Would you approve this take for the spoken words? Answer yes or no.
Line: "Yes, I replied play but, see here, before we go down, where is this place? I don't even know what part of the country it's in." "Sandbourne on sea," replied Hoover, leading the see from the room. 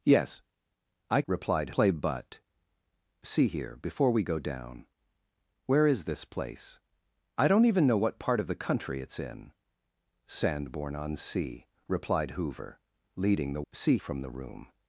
yes